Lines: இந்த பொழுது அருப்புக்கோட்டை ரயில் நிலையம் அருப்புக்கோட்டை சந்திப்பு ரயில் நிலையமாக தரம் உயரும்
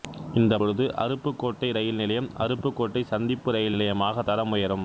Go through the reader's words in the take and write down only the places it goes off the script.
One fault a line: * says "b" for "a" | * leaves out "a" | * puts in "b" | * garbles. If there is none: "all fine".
all fine